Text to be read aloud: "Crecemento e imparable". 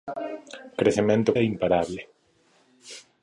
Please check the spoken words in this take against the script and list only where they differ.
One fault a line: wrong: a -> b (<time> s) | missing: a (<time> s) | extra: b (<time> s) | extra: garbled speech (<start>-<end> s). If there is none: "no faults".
no faults